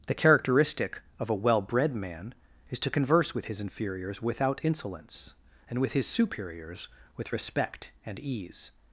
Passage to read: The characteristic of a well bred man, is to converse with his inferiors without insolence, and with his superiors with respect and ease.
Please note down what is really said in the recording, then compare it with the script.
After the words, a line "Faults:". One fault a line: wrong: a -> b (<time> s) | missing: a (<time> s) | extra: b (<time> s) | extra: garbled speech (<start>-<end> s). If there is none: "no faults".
The characteristic of a well bred man, is to converse with his inferiors without insolence, and with his superiors with respect and ease.
Faults:
no faults